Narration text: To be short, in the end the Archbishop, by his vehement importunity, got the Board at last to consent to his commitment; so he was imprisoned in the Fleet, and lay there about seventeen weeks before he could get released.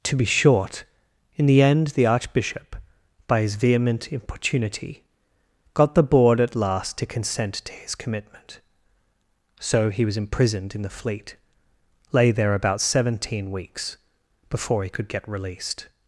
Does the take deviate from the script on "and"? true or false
true